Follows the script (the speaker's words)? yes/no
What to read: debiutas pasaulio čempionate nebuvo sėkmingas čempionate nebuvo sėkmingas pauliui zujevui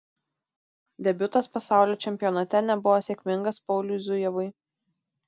no